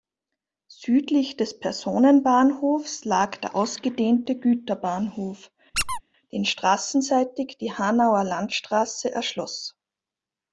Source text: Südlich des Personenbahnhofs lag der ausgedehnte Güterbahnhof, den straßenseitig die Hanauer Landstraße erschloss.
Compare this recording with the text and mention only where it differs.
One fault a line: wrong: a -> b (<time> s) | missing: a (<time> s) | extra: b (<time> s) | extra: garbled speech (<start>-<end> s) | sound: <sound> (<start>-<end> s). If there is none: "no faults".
sound: squeak (5.7-6.0 s)